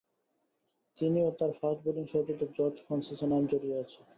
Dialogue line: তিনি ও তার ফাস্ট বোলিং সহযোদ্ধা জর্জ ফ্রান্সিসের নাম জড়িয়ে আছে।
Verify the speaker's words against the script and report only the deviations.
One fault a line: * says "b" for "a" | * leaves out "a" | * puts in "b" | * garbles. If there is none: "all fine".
all fine